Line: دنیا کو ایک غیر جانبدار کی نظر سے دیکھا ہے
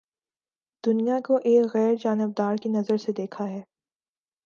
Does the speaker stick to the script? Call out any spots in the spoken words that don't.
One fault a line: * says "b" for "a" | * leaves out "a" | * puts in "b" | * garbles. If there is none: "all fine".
all fine